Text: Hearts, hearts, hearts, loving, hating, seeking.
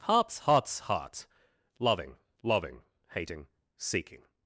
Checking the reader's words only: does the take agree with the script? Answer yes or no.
no